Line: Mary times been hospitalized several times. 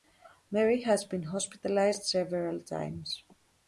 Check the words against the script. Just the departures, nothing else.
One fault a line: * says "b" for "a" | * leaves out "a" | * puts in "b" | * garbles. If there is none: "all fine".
* says "has" for "times"